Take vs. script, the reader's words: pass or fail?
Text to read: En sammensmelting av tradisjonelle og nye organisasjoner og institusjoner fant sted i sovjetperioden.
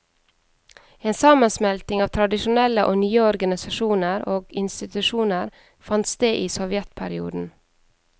pass